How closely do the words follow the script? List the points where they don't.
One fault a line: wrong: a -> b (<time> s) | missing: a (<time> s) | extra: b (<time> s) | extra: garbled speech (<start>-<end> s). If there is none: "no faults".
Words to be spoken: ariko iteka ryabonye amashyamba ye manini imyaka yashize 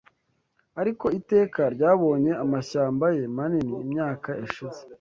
no faults